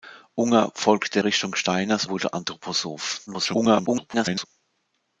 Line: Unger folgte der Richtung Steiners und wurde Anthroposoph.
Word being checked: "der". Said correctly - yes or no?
no